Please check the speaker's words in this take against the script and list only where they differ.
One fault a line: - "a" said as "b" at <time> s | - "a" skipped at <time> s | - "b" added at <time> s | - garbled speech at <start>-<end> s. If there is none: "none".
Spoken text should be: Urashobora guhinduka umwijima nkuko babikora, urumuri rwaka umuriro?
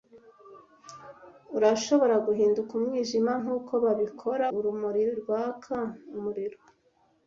none